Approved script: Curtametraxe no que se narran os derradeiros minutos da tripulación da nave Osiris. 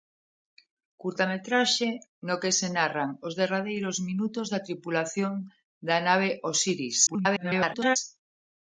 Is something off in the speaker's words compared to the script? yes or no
yes